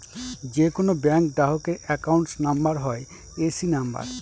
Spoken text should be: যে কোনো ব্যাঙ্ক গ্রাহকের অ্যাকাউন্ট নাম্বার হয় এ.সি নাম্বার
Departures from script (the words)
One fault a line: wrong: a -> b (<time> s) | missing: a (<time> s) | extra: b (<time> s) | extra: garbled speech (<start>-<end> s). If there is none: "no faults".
no faults